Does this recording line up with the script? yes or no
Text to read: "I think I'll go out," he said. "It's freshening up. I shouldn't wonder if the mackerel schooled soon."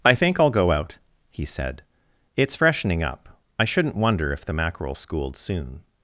yes